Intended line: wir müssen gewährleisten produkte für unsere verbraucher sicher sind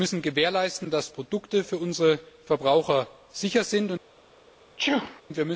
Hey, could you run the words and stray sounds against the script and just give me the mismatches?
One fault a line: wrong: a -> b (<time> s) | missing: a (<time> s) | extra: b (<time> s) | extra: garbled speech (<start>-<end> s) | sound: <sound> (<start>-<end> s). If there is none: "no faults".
extra: dass (0.9 s)
sound: sneeze (4.8-5.2 s)